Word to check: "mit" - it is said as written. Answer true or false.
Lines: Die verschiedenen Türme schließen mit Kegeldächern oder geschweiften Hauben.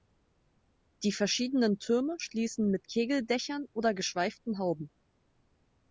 true